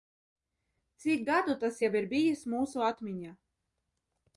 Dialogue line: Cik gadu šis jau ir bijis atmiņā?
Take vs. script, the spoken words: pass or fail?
fail